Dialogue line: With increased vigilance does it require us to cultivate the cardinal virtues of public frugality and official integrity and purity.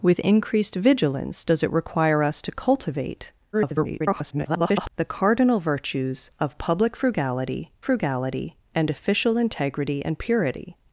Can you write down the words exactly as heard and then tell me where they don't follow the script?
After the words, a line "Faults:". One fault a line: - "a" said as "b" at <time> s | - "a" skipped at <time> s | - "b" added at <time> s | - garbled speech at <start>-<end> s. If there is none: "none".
With increased vigilance does it require us to cultivate [garbled] the cardinal virtues of public frugality frugality and official integrity and purity.
Faults:
- garbled speech at 3.5-4.9 s
- "frugality" added at 7.8 s